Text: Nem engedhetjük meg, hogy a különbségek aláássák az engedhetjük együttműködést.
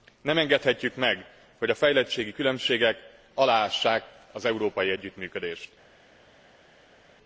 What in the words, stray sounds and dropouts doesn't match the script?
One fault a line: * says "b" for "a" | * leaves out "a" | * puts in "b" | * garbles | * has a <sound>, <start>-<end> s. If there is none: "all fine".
* puts in "fejlettségi"
* says "európai" for "engedhetjük"